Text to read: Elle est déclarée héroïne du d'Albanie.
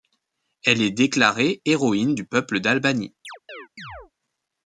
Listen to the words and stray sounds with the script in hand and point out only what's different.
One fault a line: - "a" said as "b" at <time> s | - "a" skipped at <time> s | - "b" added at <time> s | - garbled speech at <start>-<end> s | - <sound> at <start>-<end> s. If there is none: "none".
- "peuple" added at 2.2 s
- chirp at 3.2-4.1 s